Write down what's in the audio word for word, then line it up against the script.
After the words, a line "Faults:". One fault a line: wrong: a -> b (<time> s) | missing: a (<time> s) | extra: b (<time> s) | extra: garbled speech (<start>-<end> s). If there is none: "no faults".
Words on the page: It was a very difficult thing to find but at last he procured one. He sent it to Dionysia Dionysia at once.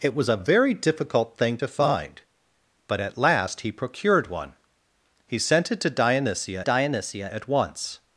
It was a very difficult thing to find but at last he procured one. He sent it to Dionysia Dionysia at once.
Faults:
no faults